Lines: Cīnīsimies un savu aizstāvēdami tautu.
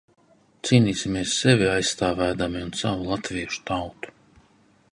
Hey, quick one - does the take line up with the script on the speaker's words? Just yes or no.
no